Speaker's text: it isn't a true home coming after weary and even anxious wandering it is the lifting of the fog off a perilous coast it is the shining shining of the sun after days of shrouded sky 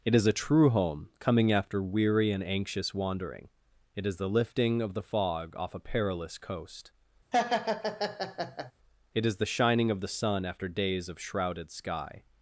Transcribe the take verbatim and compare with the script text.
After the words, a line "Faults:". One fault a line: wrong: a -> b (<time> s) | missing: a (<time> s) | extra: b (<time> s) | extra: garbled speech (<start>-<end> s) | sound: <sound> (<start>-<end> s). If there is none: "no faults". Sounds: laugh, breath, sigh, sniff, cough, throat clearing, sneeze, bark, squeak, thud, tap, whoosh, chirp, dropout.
it is a true home coming after weary and anxious wandering it is the lifting of the fog off a perilous coast it is the shining of the sun after days of shrouded sky
Faults:
wrong: isn't -> is (0.1 s)
missing: even (2.4 s)
sound: laugh (7.3-8.7 s)
missing: shining (9.9 s)